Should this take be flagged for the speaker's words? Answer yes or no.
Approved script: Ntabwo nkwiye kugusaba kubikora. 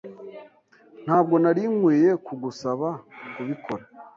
yes